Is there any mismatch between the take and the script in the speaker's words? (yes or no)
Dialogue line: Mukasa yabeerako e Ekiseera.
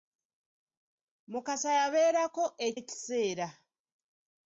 no